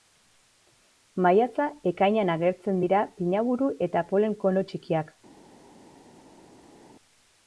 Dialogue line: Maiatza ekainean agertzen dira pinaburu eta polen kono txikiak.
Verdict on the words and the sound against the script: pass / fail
pass